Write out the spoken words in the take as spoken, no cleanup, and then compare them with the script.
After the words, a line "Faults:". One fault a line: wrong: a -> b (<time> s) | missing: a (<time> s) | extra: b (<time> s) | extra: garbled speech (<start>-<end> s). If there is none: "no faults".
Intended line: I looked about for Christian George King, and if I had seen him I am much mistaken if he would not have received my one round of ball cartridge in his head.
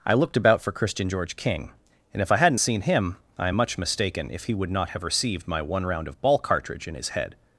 I looked about for Christian George King, and if I hadn't seen him I am much mistaken if he would not have received my one round of ball cartridge in his head.
Faults:
wrong: had -> hadn't (2.4 s)